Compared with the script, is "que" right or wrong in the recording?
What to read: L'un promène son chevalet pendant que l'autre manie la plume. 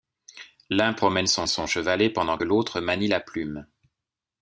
wrong